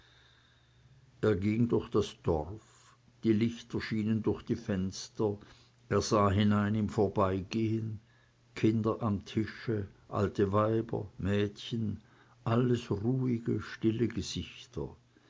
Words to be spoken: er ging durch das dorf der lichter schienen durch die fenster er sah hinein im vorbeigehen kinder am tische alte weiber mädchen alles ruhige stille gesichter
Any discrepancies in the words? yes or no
yes